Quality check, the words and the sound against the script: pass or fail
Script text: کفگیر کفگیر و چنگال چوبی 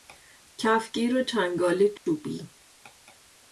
fail